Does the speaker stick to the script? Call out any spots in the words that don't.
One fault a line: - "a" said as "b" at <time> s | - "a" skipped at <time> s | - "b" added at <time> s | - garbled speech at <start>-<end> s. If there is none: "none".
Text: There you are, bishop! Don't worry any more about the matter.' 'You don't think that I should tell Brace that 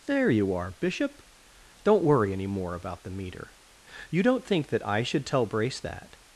- "matter" said as "meter" at 3.1 s